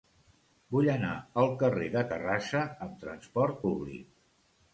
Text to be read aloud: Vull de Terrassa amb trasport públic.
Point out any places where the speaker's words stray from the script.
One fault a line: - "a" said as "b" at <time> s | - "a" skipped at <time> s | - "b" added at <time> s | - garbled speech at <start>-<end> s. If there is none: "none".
- "anar al carrer" added at 0.9 s